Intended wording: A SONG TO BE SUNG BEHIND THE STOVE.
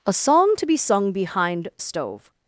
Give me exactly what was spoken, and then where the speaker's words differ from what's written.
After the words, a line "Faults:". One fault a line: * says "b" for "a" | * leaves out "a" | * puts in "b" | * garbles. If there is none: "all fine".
A SONG TO BE SUNG BEHIND STOVE.
Faults:
* leaves out "THE"